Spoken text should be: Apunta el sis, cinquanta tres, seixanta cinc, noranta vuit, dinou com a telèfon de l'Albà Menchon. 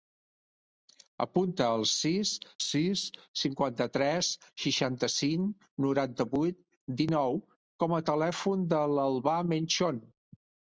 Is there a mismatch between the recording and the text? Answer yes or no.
yes